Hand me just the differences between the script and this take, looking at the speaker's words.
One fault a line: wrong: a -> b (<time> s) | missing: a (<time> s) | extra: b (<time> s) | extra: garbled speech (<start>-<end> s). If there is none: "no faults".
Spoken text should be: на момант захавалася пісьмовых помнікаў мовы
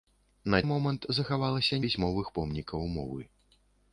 no faults